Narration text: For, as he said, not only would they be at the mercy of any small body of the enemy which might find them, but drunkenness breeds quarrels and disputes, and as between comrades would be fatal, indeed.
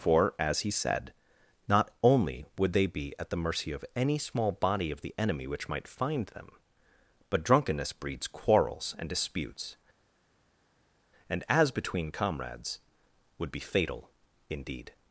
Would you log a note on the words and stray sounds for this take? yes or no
no